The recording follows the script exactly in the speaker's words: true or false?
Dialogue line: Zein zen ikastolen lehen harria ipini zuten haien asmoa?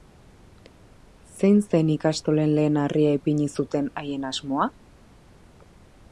true